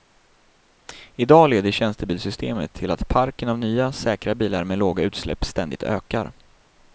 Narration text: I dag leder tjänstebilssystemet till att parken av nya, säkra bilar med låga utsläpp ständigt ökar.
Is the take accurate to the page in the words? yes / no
yes